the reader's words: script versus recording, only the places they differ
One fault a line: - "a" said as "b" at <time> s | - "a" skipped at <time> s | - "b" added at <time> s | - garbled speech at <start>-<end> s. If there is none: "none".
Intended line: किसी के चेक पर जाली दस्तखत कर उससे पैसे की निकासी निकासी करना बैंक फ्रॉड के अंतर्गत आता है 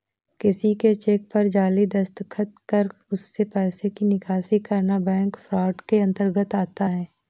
- "निकासी" skipped at 4.6 s